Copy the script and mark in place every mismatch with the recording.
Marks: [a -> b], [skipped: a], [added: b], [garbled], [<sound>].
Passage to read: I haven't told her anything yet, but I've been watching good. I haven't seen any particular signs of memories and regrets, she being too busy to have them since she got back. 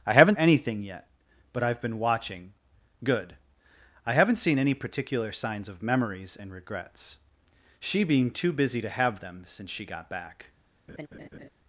I haven't [skipped: told her] anything yet, but I've been watching good. I haven't seen any particular signs of memories and regrets, she being too busy to have them since she got back. [laugh]